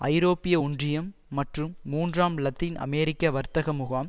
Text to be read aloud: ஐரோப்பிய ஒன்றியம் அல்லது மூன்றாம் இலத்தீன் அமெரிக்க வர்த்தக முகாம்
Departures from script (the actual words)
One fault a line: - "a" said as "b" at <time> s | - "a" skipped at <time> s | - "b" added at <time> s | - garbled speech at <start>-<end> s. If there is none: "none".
- "அல்லது" said as "மற்றும்" at 1.3 s